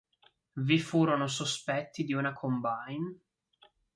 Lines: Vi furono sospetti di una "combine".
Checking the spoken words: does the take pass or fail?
pass